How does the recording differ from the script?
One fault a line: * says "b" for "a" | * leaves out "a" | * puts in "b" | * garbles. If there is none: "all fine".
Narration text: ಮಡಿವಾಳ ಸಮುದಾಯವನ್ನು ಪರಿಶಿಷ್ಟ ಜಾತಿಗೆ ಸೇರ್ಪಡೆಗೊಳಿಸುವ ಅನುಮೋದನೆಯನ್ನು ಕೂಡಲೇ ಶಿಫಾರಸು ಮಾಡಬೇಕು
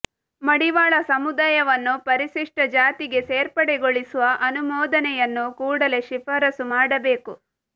all fine